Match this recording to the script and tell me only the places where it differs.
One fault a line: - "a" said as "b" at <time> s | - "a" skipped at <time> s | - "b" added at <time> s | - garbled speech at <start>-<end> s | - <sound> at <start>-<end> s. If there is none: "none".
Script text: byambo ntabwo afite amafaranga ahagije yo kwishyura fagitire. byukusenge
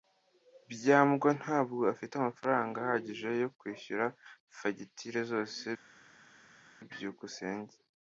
- "zose" added at 5.3 s